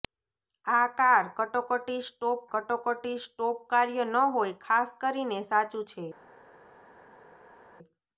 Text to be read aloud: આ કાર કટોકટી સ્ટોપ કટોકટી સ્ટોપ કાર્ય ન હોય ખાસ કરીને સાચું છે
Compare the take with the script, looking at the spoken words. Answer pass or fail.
pass